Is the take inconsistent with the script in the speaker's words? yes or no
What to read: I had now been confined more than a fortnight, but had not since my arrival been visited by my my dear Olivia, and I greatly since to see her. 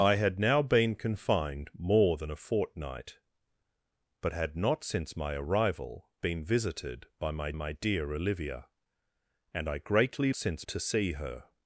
no